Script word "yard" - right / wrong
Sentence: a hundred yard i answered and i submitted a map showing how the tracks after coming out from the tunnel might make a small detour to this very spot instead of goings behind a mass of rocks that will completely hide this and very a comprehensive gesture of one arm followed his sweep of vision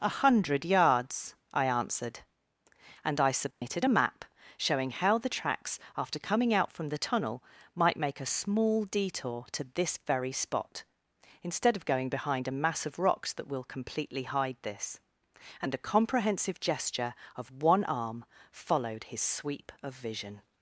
wrong